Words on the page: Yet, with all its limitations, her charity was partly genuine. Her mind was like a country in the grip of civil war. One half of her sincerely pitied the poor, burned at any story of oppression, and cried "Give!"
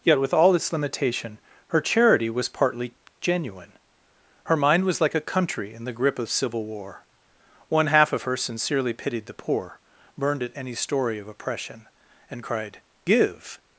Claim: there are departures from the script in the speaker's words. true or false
true